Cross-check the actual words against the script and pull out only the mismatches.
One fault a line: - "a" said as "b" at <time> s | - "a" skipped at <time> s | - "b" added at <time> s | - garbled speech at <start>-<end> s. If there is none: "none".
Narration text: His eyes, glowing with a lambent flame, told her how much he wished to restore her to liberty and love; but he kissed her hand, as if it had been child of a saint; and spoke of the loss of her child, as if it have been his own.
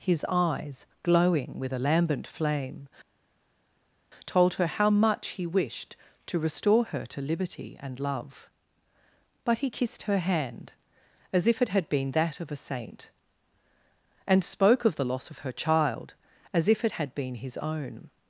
- "child" said as "that" at 12.1 s
- "have" said as "had" at 16.9 s